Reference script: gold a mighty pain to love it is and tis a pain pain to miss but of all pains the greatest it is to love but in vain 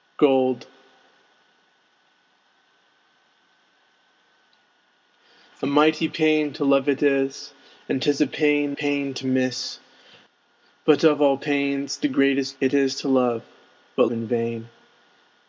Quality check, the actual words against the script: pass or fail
pass